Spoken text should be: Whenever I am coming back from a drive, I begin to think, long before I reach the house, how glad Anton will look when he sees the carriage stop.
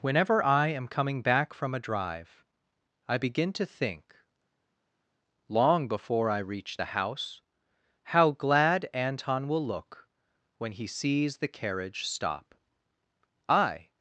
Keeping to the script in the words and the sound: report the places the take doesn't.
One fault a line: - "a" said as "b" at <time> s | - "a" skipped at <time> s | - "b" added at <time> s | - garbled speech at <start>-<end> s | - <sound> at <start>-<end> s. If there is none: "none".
- "I" added at 13.5 s